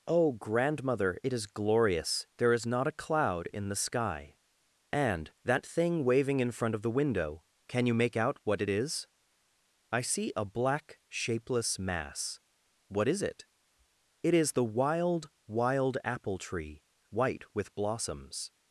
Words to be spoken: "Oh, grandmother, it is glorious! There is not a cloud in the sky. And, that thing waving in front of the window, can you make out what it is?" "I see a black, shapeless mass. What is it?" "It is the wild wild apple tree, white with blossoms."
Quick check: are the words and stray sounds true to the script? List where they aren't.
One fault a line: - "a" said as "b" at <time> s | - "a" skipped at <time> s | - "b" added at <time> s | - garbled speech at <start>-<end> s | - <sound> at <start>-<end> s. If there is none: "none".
none